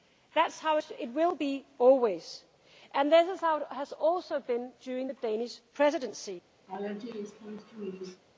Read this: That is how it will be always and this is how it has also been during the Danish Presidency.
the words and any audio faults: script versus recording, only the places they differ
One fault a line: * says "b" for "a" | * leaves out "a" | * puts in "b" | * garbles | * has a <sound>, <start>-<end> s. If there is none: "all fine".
* has a laugh, 6.7-8.2 s